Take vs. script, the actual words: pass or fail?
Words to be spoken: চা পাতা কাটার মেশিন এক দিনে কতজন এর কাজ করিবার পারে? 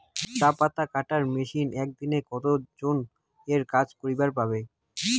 pass